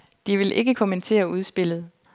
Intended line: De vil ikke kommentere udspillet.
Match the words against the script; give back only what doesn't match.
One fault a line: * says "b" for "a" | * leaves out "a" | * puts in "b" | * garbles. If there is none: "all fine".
all fine